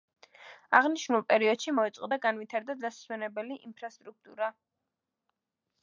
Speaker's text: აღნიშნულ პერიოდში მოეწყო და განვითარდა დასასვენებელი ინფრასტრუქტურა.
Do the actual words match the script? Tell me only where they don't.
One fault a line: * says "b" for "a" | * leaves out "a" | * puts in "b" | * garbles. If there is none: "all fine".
all fine